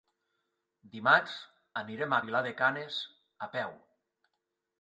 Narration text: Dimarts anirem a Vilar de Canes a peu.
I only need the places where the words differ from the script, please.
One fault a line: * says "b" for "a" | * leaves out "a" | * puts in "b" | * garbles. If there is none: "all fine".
all fine